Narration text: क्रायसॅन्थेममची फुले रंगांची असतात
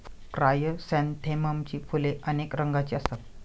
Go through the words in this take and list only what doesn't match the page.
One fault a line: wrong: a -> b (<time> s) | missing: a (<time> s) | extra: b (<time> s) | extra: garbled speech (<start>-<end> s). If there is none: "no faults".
extra: अनेक (2.3 s)